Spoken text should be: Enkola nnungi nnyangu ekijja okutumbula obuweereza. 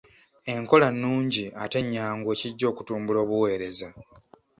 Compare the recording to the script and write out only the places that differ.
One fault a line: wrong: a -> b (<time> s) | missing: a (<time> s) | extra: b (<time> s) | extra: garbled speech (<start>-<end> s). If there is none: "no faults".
extra: ate (1.6 s)